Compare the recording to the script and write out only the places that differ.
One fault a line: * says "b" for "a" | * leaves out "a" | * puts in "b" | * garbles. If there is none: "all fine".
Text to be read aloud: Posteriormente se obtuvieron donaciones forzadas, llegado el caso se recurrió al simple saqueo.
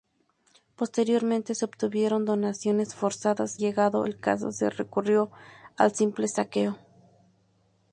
all fine